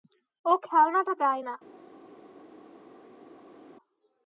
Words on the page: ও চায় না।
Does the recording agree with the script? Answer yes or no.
no